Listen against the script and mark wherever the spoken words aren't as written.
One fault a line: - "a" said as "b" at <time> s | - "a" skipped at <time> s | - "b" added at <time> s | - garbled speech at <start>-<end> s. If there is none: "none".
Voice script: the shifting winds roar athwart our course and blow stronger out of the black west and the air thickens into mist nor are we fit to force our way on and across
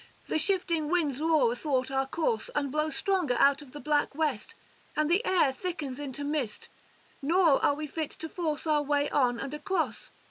none